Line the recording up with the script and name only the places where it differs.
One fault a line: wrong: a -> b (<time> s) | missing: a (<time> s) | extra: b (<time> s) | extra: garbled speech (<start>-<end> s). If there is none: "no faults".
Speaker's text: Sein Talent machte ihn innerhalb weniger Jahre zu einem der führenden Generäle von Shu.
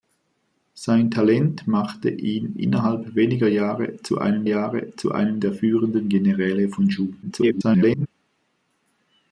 extra: Jahre zu einem (4.4 s)
extra: garbled speech (7.2-8.1 s)